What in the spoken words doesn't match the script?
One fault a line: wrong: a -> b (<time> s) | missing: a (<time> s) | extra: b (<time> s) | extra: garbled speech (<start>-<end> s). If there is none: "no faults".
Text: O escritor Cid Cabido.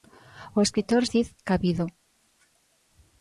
no faults